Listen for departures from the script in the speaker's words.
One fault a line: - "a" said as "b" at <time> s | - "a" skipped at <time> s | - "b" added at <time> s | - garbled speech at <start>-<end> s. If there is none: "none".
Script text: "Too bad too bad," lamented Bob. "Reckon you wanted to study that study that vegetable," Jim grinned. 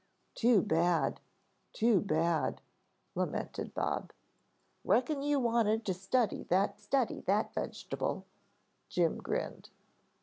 none